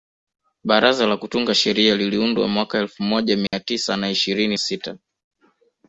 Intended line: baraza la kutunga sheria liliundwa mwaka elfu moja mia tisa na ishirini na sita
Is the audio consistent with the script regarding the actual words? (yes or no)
no